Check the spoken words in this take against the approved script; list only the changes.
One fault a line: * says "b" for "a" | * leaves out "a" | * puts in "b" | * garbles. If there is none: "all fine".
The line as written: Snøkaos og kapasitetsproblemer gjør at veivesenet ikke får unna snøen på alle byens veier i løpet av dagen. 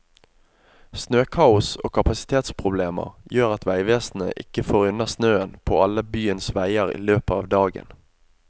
all fine